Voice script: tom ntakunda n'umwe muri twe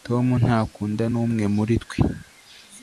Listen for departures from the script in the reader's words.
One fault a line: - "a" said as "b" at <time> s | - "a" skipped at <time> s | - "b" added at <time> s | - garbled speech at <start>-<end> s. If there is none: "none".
none